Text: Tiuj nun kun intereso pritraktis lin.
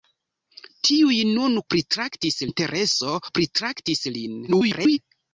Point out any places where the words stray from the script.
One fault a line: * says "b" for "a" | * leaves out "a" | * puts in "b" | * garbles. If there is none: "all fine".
* says "pritraktis" for "kun"
* garbles